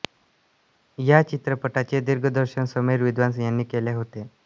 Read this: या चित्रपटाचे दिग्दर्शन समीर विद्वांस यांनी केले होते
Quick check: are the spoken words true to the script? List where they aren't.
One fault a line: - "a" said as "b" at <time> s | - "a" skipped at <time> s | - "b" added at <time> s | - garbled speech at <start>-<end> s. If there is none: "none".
none